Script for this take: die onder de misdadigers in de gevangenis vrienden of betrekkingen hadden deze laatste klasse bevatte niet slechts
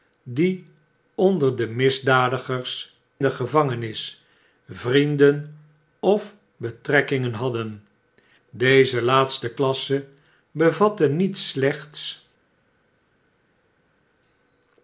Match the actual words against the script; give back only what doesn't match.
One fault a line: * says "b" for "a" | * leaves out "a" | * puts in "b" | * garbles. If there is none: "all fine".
* leaves out "in"